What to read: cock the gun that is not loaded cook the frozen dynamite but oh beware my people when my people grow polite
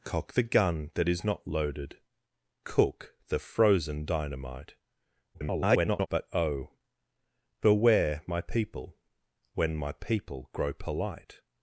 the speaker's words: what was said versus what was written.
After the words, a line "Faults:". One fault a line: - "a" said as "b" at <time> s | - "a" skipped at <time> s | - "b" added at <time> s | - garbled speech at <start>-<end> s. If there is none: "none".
cock the gun that is not loaded cook the frozen dynamite [garbled] but oh beware my people when my people grow polite
Faults:
- garbled speech at 5.3-6.1 s